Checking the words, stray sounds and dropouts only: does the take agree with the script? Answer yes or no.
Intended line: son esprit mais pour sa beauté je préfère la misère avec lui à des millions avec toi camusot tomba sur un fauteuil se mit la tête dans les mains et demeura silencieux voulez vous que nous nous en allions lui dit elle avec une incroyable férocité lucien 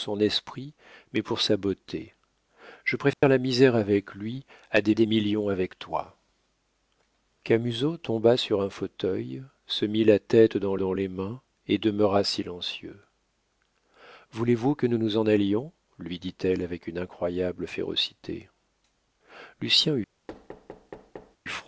no